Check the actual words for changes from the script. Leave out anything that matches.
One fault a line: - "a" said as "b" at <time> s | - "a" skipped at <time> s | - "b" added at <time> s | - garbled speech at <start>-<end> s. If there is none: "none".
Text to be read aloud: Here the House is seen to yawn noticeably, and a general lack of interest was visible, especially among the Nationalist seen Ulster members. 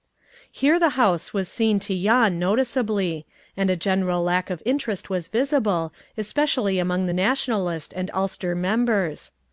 - "is" said as "was" at 1.3 s
- "seen" said as "and" at 7.9 s